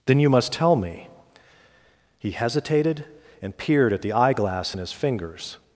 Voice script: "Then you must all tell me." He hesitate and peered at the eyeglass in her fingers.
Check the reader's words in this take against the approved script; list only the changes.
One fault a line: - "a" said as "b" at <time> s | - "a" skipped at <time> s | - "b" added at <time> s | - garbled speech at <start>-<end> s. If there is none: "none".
- "all" skipped at 0.5 s
- "hesitate" said as "hesitated" at 2.3 s
- "her" said as "his" at 4.8 s